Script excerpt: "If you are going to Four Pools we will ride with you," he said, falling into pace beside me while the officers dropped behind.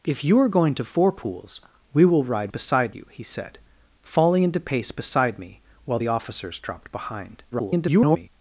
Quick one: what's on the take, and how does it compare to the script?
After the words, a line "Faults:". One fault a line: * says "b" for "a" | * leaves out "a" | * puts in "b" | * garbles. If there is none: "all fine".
"If you are going to Four Pools we will ride beside you," he said, falling into pace beside me while the officers dropped behind. [garbled]
Faults:
* says "beside" for "with"
* garbles